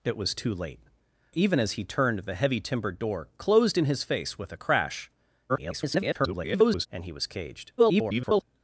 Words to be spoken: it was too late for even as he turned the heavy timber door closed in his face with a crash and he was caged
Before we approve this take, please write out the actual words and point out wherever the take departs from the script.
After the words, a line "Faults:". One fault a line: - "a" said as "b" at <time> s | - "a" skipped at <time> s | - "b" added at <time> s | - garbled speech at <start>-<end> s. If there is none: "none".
it was too late even as he turned the heavy timber door closed in his face with a crash [garbled] and he was caged [garbled]
Faults:
- "for" skipped at 0.8 s
- garbled speech at 5.5-6.9 s
- garbled speech at 7.8-8.4 s